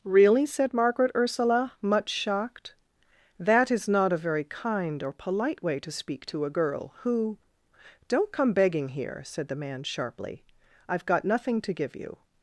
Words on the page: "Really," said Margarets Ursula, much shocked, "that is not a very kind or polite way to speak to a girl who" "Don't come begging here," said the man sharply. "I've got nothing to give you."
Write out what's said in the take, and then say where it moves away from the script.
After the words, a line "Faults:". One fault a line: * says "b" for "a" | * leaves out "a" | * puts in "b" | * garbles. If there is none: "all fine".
"Really," said Margaret Ursula, much shocked, "that is not a very kind or polite way to speak to a girl who" "Don't come begging here," said the man sharply. "I've got nothing to give you."
Faults:
* says "Margaret" for "Margarets"